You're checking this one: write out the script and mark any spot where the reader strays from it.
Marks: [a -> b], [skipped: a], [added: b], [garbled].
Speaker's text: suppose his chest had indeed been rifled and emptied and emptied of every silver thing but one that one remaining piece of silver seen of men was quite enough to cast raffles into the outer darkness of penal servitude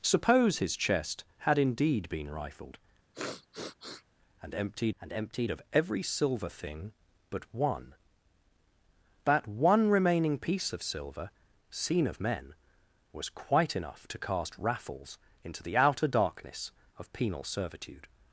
suppose his chest had indeed been rifled and emptied and emptied of every silver thing but one that one remaining piece of silver seen of men was quite enough to cast raffles into the outer darkness of penal servitude